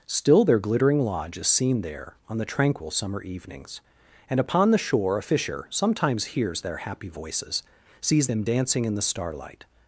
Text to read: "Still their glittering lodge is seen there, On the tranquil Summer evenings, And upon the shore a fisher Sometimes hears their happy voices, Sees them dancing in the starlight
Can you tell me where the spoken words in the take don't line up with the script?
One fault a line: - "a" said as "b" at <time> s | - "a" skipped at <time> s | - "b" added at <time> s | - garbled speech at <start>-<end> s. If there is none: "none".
none